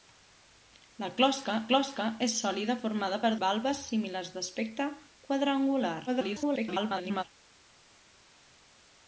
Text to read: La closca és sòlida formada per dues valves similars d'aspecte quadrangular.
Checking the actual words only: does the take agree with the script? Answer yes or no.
no